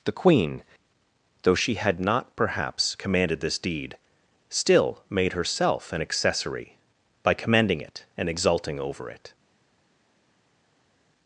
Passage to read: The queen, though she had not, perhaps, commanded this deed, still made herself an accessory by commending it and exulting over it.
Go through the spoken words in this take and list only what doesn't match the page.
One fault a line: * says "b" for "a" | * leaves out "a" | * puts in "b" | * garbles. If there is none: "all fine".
all fine